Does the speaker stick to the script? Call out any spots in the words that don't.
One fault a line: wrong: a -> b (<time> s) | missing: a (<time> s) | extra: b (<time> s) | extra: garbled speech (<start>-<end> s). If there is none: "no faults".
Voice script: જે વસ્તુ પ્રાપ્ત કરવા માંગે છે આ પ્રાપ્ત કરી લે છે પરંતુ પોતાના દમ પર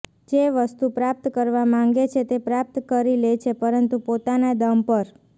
wrong: આ -> તે (2.2 s)